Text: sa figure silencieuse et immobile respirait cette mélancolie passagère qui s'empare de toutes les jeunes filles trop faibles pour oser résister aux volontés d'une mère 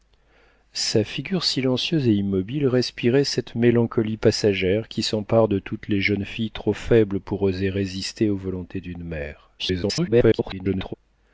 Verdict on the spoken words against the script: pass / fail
fail